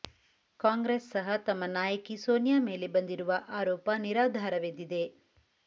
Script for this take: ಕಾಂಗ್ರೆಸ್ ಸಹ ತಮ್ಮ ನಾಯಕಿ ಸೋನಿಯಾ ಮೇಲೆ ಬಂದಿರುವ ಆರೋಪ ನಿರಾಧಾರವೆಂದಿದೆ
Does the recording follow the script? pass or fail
pass